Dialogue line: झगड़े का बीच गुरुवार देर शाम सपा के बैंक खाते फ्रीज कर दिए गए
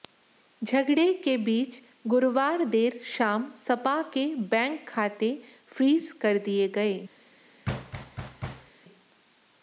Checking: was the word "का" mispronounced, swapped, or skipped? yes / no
yes